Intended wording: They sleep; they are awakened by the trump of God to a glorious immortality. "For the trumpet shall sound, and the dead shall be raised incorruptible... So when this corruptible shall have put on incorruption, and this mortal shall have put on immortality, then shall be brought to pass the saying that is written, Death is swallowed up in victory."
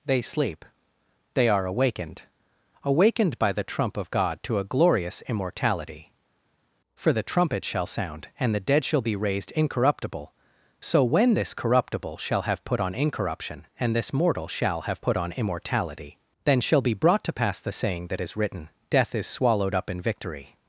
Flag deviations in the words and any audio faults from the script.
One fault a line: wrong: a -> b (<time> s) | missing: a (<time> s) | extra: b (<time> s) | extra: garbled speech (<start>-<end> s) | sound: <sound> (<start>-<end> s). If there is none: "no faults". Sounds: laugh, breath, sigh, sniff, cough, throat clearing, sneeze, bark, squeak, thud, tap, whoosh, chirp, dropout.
extra: awakened (2.8 s)